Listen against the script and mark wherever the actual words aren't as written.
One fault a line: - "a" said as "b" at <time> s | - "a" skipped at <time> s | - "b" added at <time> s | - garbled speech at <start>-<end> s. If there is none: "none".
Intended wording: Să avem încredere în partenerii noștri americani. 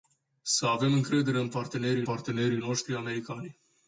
- "partenerii" added at 2.0 s